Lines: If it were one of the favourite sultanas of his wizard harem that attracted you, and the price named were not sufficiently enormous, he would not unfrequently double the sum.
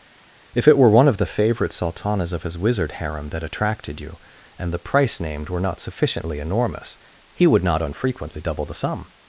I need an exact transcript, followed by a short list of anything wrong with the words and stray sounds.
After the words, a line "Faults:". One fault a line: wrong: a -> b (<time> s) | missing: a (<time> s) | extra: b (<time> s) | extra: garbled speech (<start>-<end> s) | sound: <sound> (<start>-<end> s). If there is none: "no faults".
If it were one of the favourite sultanas of his wizard harem that attracted you, and the price named were not sufficiently enormous, he would not unfrequently double the sum.
Faults:
no faults